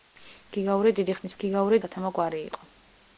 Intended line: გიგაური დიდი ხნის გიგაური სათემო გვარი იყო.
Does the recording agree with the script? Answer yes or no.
yes